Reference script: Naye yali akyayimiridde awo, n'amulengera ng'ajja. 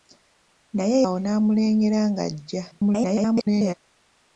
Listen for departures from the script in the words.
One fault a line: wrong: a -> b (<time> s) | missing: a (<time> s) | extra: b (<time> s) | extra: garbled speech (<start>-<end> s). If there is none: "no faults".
missing: yali akyayimiridde (1.0 s)
extra: garbled speech (2.7-3.7 s)